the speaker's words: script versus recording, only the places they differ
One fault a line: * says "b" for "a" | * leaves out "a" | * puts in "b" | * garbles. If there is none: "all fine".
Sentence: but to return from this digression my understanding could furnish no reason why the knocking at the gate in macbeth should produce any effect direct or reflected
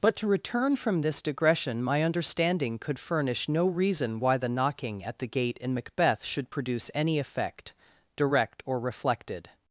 all fine